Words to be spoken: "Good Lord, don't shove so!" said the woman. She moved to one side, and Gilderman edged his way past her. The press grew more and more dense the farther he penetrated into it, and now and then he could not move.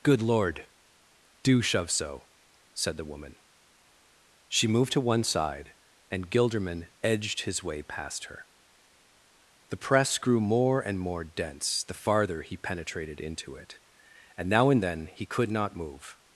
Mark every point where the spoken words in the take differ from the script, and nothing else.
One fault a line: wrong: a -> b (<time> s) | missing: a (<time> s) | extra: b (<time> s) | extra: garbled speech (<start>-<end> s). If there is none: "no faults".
wrong: don't -> do (1.4 s)